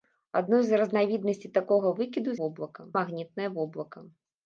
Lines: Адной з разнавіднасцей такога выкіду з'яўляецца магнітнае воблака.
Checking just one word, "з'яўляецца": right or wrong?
wrong